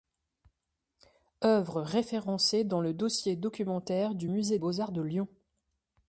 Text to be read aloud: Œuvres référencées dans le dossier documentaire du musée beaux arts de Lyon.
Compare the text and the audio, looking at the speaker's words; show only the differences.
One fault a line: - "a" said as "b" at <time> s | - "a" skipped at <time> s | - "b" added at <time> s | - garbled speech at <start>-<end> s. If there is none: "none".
none